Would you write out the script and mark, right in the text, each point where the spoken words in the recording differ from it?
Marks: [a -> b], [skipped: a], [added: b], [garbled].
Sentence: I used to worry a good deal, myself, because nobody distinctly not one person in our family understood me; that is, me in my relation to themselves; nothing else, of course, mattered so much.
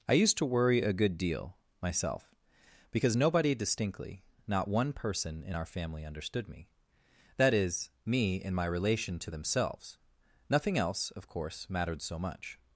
I used to worry a good deal, myself, because nobody distinctly not one person in our family understood me; that is, me in my relation to themselves; nothing else, of course, mattered so much.